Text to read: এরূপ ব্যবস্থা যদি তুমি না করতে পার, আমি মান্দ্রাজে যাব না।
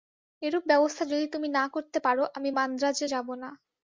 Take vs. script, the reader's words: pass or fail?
pass